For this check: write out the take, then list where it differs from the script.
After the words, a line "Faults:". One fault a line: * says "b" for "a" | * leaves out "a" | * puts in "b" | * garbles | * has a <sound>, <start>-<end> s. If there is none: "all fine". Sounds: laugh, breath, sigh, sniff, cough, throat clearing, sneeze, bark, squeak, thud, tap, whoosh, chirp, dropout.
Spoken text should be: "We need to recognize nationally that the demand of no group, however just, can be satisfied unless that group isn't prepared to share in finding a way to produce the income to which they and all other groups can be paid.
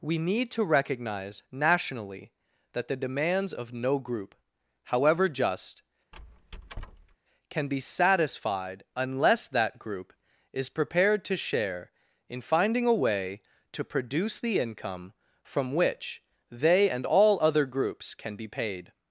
"We need to recognize nationally that the demands of no group, however just, can be satisfied unless that group is prepared to share in finding a way to produce the income from which they and all other groups can be paid.
Faults:
* says "demands" for "demand"
* has a squeak, 6.1-7.2 s
* says "is" for "isn't"
* says "from" for "to"